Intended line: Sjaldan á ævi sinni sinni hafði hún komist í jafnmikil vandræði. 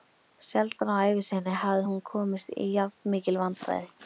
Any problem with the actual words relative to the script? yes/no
yes